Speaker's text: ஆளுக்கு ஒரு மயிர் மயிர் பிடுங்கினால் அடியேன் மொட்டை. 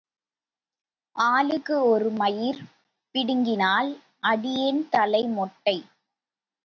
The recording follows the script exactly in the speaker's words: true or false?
false